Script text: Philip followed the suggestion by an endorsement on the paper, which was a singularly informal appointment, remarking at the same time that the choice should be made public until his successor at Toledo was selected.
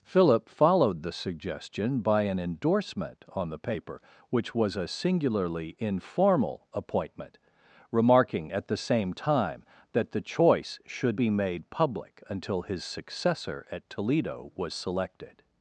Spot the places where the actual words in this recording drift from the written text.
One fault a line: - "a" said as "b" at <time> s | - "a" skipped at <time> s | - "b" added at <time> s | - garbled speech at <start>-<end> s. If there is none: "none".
none